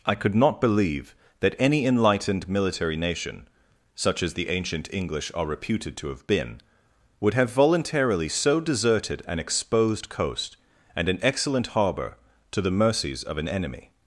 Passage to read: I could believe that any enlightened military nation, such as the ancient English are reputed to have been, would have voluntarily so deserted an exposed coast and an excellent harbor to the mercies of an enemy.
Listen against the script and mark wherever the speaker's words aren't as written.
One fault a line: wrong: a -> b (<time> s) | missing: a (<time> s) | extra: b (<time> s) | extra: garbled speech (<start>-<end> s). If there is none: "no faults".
extra: not (0.3 s)